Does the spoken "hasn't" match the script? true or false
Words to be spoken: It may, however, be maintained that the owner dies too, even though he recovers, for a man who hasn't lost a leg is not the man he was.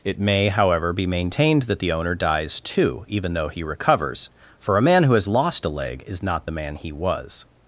false